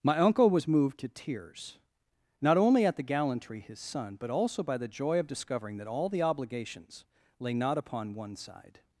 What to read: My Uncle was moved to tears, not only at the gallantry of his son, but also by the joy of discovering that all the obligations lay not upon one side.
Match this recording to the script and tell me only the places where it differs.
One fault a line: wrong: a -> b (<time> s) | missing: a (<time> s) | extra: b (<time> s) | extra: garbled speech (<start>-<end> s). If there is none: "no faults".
missing: of (3.6 s)